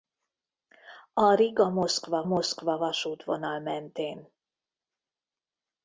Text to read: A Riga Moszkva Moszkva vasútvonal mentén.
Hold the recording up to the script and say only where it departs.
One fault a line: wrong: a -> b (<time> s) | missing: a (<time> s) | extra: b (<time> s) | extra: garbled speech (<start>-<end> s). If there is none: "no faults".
no faults